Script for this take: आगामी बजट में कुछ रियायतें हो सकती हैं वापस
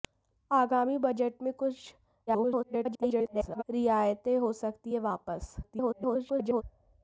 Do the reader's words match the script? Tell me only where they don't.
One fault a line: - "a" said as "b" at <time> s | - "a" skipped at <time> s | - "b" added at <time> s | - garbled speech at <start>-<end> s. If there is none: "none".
- garbled speech at 2.3-3.6 s
- garbled speech at 5.6-6.6 s